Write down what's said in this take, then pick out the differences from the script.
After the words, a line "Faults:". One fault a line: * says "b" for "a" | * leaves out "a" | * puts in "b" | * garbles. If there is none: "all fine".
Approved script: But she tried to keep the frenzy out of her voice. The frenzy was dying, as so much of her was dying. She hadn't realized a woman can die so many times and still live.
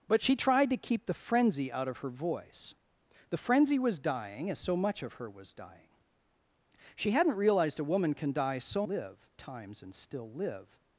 But she tried to keep the frenzy out of her voice. The frenzy was dying, as so much of her was dying. She hadn't realized a woman can die so live times and still live.
Faults:
* says "live" for "many"